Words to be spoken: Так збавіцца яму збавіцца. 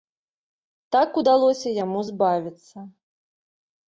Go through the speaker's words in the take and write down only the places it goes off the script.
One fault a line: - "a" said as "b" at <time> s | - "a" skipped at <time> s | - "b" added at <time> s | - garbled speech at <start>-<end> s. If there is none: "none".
- "збавіцца" said as "удалося" at 1.2 s